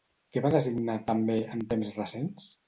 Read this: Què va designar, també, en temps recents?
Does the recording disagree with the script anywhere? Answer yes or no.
no